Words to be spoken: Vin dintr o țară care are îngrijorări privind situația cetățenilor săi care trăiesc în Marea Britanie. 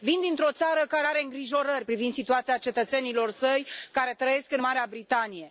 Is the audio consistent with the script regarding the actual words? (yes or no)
yes